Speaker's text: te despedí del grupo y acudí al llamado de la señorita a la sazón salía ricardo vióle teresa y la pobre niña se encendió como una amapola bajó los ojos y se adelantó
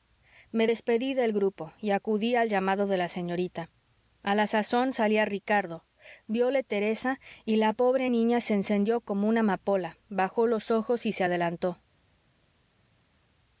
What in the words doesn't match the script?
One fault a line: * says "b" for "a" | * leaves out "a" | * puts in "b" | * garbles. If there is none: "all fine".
* says "me" for "te"